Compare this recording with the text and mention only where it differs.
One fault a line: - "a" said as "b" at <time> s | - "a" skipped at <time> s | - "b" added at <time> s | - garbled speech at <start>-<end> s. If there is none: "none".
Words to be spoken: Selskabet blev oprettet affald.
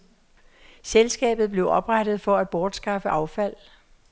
- "for at bortskaffe" added at 2.2 s